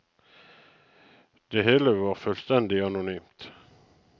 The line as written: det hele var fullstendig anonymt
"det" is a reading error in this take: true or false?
false